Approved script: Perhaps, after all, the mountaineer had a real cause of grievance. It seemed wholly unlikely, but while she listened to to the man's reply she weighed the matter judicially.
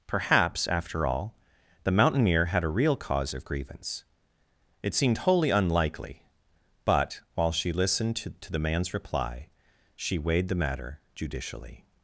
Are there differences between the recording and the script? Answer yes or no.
no